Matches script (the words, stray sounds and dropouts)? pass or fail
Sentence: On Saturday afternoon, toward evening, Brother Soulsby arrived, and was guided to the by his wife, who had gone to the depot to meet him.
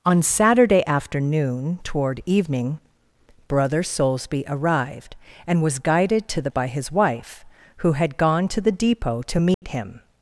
fail